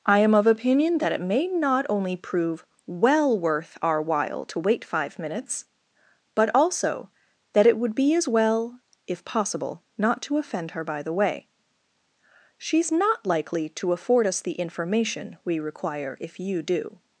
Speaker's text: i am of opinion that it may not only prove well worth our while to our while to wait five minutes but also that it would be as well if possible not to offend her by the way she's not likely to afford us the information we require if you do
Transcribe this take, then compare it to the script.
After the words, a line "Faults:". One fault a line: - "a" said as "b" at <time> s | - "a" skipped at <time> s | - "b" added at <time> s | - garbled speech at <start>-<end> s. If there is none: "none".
i am of opinion that it may not only prove well worth our while to wait five minutes but also that it would be as well if possible not to offend her by the way she's not likely to afford us the information we require if you do
Faults:
- "our while to" skipped at 4.6 s